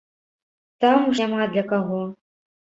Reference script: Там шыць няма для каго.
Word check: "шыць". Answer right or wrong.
wrong